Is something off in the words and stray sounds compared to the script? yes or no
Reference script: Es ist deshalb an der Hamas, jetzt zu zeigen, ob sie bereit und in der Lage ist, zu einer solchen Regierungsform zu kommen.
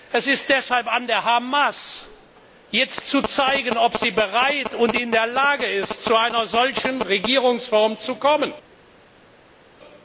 no